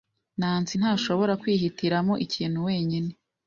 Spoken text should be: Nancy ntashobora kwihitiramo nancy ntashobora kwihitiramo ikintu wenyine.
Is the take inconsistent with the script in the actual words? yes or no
yes